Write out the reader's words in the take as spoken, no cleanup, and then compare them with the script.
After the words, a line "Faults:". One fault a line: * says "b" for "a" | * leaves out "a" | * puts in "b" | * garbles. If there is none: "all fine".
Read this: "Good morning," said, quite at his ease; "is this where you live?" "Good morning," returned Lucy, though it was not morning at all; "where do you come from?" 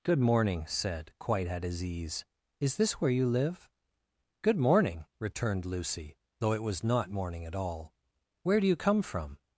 "Good morning," said, quite at his ease; "is this where you live?" "Good morning," returned Lucy, though it was not morning at all; "where do you come from?"
Faults:
all fine